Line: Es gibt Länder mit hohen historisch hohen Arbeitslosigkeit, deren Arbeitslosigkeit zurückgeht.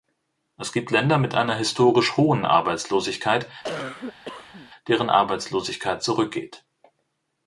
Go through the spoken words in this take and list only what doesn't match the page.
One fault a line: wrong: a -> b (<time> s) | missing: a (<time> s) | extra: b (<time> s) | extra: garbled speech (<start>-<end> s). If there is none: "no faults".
wrong: hohen -> einer (1.4 s)